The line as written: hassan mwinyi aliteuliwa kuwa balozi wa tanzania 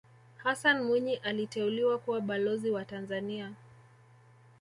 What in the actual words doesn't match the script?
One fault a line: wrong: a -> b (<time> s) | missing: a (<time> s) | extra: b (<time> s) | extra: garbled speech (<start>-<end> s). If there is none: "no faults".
no faults